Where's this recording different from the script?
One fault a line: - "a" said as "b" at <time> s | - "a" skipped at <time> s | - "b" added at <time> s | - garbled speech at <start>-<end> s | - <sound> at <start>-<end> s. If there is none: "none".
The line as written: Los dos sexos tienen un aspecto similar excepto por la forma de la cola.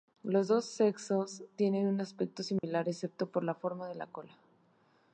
- dropout at 2.6-2.6 s